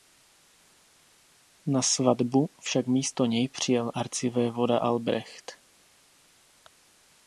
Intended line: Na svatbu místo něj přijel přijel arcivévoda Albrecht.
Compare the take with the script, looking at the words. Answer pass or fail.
fail